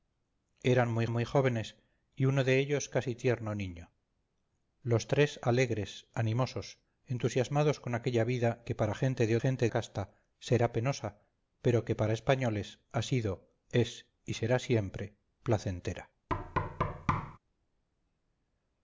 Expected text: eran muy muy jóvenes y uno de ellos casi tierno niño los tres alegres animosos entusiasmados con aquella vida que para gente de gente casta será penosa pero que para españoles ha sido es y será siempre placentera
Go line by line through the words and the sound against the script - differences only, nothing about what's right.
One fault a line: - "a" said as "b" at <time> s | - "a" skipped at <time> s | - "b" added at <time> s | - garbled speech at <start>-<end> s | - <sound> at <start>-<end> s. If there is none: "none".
- thud at 16.3-17.4 s